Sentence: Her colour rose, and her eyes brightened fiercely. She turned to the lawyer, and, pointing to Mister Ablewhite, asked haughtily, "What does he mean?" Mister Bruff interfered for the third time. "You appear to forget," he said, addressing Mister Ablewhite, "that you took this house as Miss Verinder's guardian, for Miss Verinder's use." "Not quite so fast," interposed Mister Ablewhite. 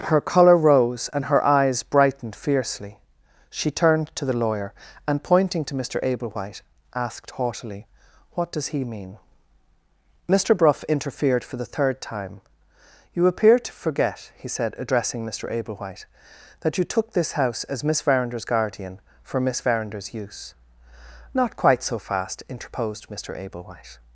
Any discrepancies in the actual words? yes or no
no